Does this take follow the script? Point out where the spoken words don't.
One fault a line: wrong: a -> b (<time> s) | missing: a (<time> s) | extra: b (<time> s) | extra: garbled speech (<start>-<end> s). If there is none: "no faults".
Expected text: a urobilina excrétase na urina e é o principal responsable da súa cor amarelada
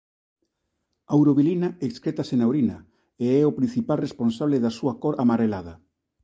no faults